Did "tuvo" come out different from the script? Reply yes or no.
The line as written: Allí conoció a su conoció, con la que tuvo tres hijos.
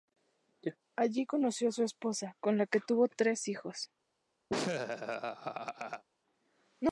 no